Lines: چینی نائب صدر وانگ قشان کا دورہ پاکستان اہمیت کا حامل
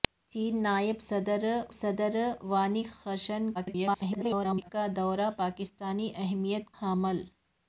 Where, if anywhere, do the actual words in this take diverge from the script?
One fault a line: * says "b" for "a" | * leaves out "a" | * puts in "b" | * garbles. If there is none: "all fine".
* puts in "صدر"
* garbles
* leaves out "کا"